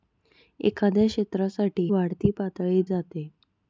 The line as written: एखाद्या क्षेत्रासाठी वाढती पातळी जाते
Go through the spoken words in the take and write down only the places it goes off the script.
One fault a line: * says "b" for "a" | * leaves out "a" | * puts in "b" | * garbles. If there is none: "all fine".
all fine